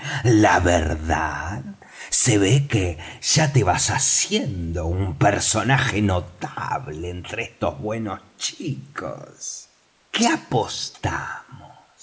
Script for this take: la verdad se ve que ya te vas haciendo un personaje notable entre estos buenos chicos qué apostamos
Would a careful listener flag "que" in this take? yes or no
no